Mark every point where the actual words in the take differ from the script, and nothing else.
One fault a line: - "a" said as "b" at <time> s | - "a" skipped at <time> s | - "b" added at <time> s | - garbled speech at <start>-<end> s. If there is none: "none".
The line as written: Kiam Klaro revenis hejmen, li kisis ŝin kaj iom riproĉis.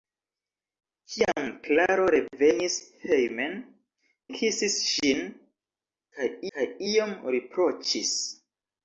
- "li" skipped at 3.5 s
- "kaj" added at 6.6 s